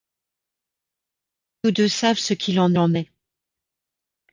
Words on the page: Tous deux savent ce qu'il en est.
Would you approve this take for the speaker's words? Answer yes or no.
no